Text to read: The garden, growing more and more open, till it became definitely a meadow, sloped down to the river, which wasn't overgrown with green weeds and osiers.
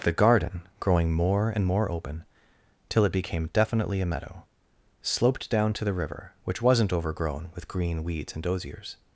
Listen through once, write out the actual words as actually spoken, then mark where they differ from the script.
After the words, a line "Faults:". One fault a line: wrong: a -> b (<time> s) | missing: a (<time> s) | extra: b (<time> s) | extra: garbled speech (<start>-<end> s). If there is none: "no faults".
The garden, growing more and more open, till it became definitely a meadow, sloped down to the river, which wasn't overgrown with green weeds and osiers.
Faults:
no faults